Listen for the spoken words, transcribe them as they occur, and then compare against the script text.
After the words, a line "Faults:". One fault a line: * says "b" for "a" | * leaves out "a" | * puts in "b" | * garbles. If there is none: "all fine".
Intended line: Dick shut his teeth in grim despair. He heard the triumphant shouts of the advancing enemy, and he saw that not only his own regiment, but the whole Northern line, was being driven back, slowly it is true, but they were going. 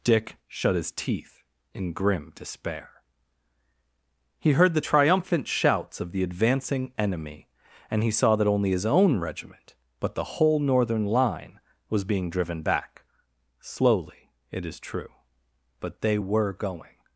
Dick shut his teeth in grim despair. He heard the triumphant shouts of the advancing enemy, and he saw that only his own regiment, but the whole Northern line, was being driven back, slowly it is true, but they were going.
Faults:
* leaves out "not"